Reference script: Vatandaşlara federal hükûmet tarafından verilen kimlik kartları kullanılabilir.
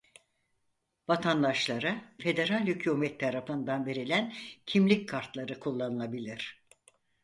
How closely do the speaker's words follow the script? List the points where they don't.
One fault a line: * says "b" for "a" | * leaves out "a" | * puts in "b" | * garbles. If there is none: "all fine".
all fine